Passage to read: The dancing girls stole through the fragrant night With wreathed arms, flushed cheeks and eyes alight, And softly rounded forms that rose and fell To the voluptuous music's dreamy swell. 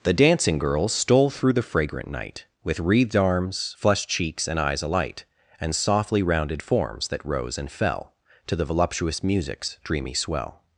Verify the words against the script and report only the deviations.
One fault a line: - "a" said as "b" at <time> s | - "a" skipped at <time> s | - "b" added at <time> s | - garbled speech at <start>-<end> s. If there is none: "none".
none